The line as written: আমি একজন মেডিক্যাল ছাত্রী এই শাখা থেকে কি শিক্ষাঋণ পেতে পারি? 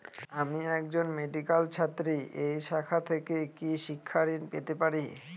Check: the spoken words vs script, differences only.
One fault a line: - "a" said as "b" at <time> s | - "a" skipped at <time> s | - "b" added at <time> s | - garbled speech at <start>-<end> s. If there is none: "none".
none